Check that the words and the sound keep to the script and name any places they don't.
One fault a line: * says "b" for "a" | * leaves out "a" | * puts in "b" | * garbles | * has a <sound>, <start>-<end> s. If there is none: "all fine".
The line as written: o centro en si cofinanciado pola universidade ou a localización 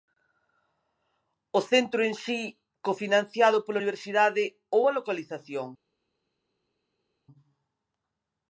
all fine